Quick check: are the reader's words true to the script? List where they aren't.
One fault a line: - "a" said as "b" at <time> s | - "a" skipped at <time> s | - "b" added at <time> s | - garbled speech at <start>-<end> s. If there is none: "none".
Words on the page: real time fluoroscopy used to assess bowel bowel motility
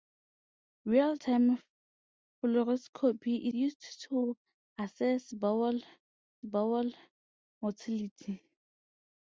none